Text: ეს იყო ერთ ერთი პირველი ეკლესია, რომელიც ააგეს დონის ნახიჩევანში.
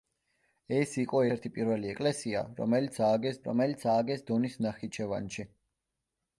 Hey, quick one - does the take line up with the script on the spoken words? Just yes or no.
no